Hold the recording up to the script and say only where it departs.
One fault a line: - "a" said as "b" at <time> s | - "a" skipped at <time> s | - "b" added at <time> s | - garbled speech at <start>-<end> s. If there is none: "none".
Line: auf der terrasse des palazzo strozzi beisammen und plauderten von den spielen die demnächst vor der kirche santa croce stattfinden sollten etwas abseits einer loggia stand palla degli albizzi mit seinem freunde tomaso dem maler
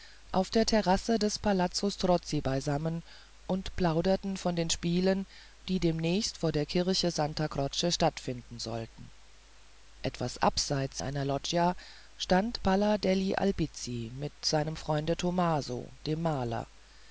none